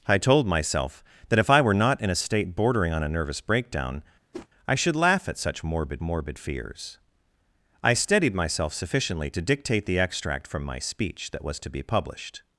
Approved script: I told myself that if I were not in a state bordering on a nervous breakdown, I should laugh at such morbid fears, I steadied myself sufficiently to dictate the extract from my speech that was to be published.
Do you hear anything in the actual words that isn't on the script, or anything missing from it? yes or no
yes